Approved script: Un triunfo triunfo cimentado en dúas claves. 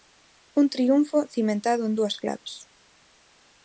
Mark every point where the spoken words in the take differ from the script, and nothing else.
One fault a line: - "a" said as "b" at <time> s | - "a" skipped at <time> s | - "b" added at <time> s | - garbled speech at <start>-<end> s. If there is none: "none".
- "triunfo" skipped at 1.3 s